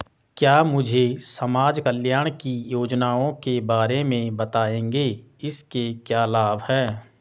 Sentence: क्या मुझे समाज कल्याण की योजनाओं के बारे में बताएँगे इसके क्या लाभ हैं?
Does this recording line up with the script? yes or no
yes